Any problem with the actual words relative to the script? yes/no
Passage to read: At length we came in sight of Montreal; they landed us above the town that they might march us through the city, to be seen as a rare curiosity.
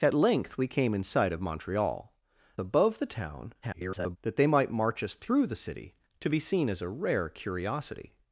yes